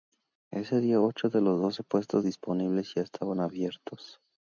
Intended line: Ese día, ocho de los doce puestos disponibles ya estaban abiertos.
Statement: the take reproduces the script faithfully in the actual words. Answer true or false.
true